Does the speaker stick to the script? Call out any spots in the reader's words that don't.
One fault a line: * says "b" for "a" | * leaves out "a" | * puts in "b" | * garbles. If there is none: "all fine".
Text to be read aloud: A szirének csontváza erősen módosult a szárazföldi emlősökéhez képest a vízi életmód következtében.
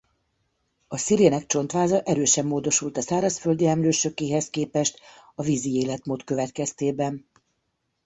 all fine